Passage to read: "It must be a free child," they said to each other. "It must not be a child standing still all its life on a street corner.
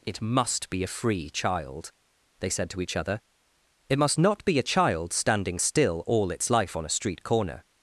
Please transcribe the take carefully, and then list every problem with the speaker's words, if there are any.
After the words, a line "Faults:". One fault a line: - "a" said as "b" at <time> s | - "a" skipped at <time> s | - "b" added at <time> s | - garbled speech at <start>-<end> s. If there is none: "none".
"It must be a free child," they said to each other. "It must not be a child standing still all its life on a street corner.
Faults:
none